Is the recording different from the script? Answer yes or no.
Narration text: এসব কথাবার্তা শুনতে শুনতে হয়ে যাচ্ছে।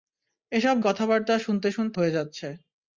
no